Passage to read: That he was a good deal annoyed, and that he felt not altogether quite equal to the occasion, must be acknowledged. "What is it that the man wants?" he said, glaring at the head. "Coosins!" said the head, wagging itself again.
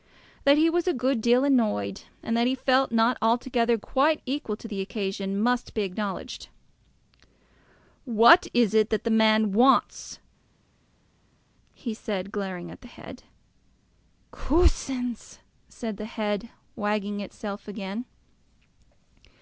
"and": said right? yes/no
yes